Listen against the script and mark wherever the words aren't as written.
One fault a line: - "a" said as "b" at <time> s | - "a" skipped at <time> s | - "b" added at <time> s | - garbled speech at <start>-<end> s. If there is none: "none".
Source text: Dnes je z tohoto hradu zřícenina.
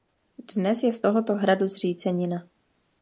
none